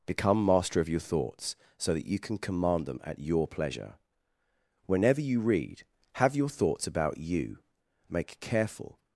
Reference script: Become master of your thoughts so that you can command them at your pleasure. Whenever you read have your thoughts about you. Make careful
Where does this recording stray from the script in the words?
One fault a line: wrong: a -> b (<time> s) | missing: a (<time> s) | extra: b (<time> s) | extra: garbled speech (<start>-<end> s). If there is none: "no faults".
no faults